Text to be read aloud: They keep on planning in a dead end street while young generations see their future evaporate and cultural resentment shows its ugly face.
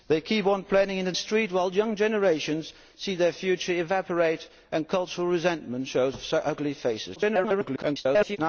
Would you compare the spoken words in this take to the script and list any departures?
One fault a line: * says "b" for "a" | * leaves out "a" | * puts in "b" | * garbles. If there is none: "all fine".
* leaves out "dead end"
* garbles